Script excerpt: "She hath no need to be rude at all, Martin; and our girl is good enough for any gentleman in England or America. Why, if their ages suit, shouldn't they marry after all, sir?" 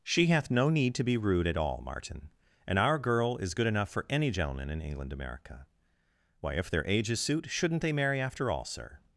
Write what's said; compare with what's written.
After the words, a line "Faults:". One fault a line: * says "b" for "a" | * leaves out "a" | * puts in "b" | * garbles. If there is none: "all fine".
"She hath no need to be rude at all, Martin; and our girl is good enough for any gentleman in England America. Why, if their ages suit, shouldn't they marry after all, sir?"
Faults:
* leaves out "or"